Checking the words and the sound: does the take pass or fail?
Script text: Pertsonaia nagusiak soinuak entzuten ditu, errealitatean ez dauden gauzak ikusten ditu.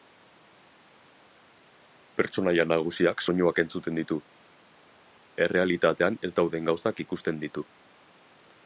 pass